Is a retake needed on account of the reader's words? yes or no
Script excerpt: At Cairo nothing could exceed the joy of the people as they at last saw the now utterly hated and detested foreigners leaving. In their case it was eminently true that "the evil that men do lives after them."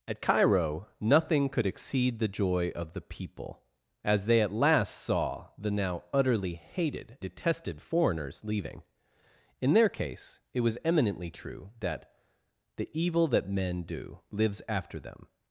yes